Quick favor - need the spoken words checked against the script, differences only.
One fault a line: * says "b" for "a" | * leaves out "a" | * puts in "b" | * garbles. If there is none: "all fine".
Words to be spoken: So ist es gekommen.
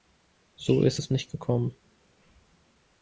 * puts in "nicht"